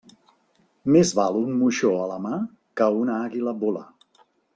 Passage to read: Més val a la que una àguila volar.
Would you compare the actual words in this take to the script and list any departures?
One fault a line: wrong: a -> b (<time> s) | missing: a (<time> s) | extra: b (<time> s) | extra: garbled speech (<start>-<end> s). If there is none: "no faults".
extra: un moixó (1.4 s)
extra: mà (2.2 s)